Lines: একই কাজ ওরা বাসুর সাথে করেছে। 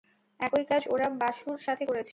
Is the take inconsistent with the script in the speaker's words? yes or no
no